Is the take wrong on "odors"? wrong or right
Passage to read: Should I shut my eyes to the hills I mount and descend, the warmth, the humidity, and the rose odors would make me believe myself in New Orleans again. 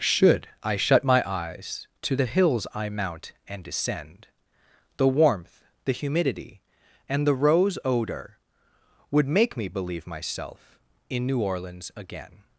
wrong